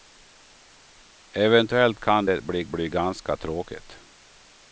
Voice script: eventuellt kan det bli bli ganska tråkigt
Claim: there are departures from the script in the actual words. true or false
false